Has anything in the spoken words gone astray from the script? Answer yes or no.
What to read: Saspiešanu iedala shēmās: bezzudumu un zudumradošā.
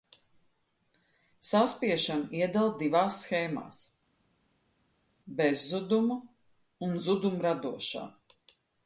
yes